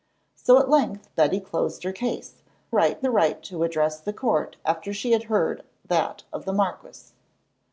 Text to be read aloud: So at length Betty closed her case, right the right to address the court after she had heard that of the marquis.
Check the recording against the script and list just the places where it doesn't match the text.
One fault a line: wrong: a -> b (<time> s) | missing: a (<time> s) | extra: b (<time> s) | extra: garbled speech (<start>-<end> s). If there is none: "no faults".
no faults